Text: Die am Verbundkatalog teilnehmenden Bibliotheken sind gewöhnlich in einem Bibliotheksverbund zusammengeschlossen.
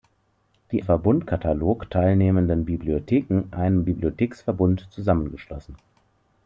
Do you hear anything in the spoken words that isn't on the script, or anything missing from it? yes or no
yes